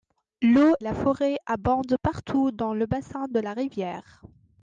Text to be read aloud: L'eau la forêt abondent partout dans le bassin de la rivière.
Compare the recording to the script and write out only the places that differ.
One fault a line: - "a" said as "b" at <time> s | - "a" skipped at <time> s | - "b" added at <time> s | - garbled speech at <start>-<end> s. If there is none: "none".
none